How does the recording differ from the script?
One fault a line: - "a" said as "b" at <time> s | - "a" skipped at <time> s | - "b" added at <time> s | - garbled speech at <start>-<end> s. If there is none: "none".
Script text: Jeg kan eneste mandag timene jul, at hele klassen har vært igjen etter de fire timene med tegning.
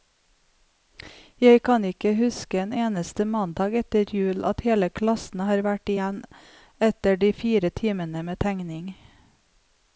- "ikke huske en" added at 1.9 s
- "timene" said as "etter" at 3.8 s